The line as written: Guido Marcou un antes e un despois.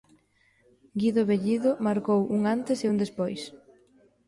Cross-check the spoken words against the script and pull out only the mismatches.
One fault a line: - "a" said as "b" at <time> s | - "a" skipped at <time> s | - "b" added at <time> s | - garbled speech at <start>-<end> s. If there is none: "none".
- "Bellido" added at 1.3 s